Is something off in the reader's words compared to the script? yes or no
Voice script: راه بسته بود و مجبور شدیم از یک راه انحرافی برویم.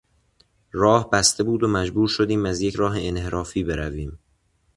no